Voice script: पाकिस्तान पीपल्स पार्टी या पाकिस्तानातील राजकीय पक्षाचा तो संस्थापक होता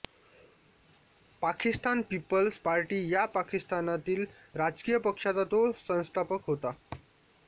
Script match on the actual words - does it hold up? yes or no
yes